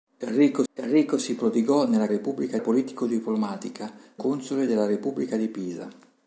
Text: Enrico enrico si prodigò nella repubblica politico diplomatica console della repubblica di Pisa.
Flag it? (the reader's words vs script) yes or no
no